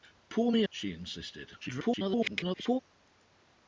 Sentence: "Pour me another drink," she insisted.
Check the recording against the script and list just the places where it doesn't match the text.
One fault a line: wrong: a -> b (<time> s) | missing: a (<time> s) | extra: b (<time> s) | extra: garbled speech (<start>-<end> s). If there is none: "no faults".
missing: another drink (0.6 s)
extra: garbled speech (1.6-2.8 s)